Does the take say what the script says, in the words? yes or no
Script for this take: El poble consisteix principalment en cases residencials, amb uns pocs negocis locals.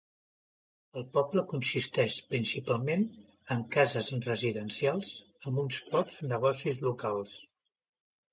yes